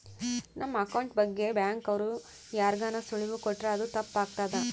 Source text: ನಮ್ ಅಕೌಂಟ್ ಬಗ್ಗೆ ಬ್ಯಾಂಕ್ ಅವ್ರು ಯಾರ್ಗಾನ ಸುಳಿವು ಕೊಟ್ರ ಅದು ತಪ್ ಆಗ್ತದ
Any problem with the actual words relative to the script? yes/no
no